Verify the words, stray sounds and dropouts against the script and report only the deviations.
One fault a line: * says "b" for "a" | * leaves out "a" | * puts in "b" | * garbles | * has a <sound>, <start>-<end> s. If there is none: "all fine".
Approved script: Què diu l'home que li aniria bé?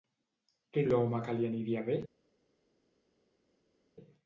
* leaves out "diu"